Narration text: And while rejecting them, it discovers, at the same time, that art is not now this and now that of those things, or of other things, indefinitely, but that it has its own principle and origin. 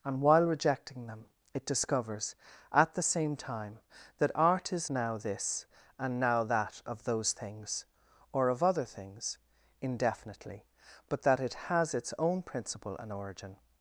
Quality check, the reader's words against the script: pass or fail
fail